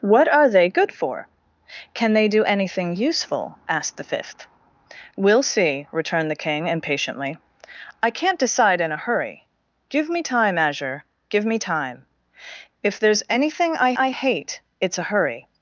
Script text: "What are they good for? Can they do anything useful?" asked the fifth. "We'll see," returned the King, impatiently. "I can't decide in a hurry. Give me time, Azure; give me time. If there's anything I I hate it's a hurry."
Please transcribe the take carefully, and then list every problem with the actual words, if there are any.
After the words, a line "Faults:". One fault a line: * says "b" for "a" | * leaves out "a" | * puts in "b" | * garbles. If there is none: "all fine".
"What are they good for? Can they do anything useful?" asked the fifth. "We'll see," returned the King, impatiently. "I can't decide in a hurry. Give me time, Azure; give me time. If there's anything I I hate it's a hurry."
Faults:
all fine